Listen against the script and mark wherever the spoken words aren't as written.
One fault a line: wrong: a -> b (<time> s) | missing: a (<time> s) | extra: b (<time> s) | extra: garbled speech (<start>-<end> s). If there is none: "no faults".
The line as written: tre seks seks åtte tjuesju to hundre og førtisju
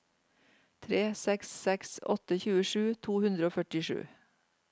no faults